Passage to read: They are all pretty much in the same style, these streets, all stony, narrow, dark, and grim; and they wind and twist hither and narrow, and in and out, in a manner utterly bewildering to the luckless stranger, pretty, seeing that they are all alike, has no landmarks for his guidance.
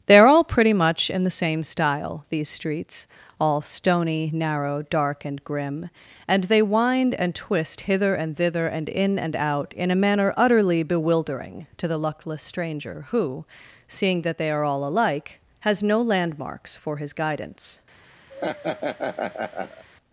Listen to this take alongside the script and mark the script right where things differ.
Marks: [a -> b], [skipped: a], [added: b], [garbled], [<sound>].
They are all pretty much in the same style, these streets, all stony, narrow, dark, and grim; and they wind and twist hither and [narrow, -> thither] and in and out, in a manner utterly bewildering to the luckless stranger, [pretty, -> who] seeing that they are all alike, has no landmarks for his guidance. [laugh]